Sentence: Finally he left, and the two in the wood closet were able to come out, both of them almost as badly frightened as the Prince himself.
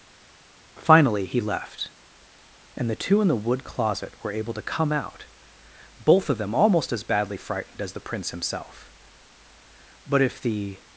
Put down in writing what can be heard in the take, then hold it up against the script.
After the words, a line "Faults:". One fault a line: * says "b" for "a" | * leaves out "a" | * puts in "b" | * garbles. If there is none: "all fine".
Finally he left, and the two in the wood closet were able to come out, both of them almost as badly frightened as the Prince himself. But if the
Faults:
* puts in "But if the"